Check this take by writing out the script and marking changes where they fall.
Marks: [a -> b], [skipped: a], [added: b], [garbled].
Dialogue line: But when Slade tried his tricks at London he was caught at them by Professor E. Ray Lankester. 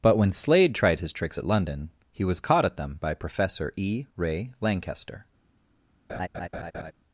But when Slade tried his tricks at London he was caught at them by Professor E. Ray Lankester.